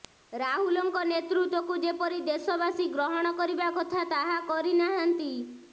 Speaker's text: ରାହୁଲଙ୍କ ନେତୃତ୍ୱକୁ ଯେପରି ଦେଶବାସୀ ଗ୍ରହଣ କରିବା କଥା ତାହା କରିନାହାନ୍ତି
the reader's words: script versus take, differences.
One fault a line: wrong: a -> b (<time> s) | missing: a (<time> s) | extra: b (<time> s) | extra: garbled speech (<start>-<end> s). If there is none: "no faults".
no faults